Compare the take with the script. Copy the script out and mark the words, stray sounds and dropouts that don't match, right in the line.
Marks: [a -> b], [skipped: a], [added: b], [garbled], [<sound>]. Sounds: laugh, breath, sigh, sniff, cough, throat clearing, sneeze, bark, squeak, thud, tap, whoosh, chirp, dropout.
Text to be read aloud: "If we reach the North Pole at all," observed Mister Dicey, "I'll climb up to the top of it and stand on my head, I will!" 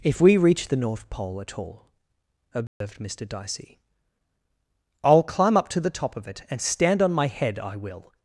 "If we reach the North Pole at all," observed [dropout] Mister Dicey, "I'll climb up to the top of it and stand on my head, I will!"